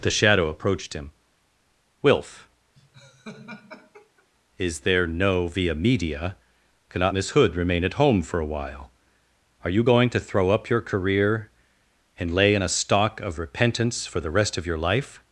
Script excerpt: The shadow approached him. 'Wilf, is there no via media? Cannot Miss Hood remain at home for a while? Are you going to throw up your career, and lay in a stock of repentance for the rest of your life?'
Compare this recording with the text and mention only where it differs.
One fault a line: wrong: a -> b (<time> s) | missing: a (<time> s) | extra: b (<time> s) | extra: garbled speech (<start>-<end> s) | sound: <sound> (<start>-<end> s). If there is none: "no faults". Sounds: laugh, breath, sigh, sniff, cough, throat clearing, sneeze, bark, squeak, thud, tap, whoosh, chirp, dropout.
sound: laugh (2.7-4.3 s)